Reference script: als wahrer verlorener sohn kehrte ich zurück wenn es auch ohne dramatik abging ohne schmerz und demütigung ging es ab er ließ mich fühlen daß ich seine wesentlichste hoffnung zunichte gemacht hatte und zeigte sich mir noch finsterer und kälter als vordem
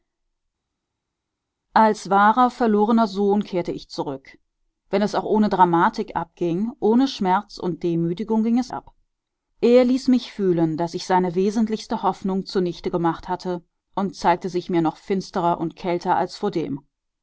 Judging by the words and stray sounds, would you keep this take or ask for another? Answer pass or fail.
pass